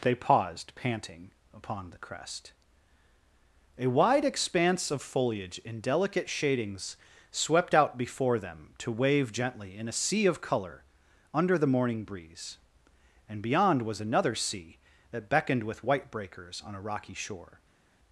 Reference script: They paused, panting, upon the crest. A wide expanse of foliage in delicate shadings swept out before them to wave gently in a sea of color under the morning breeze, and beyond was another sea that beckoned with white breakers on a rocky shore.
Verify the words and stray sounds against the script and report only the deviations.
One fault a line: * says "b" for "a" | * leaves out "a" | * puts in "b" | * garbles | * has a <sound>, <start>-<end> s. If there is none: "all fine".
all fine